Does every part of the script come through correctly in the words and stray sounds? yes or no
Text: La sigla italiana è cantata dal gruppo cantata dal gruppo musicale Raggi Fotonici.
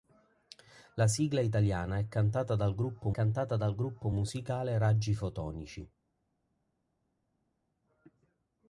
yes